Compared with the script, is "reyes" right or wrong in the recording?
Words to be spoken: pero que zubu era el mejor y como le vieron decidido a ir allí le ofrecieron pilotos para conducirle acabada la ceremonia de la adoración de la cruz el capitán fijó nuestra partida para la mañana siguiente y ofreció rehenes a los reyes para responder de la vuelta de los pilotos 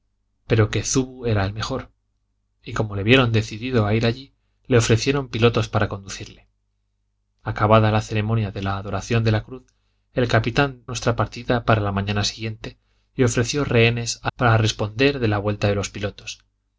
wrong